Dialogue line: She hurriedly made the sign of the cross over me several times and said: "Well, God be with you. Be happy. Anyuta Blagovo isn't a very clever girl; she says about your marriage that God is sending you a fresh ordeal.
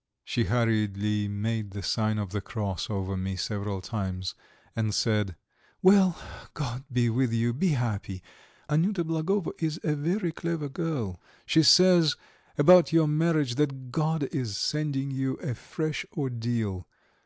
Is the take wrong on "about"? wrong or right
right